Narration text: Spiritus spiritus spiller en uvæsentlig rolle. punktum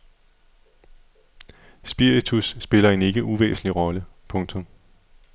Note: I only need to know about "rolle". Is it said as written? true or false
true